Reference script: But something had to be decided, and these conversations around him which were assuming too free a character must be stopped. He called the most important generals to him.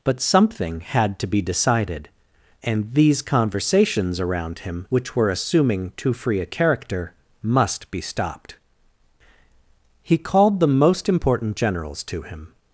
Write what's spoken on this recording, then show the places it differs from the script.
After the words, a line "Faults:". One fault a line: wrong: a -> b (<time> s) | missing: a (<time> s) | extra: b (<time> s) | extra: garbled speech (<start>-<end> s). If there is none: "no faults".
But something had to be decided, and these conversations around him which were assuming too free a character must be stopped. He called the most important generals to him.
Faults:
no faults